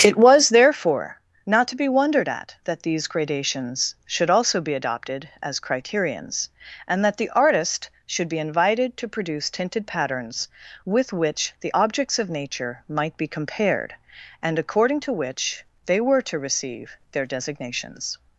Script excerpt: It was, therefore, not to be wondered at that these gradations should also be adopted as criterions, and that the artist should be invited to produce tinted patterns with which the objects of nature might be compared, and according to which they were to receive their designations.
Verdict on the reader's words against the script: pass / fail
pass